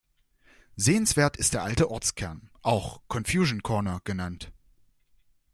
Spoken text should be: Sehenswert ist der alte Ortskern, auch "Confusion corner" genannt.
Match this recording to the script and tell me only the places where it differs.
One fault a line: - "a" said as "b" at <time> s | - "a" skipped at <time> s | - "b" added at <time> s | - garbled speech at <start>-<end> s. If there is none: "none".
none